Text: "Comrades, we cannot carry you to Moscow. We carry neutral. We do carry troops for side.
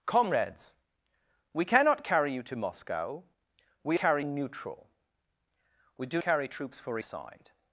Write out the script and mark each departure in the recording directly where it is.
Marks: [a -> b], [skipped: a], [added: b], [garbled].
"Comrades, we cannot carry you to Moscow. We carry neutral. We do carry troops for side.